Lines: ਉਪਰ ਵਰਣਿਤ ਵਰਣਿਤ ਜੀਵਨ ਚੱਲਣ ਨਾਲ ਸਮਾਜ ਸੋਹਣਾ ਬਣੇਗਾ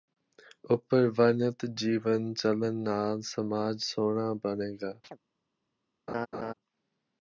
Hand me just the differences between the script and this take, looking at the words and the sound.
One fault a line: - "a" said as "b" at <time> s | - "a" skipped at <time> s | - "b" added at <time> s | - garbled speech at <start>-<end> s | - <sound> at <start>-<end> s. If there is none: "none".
- "ਵਰਣਿਤ" skipped at 1.6 s
- chirp at 5.0-5.2 s
- laugh at 6.1-6.5 s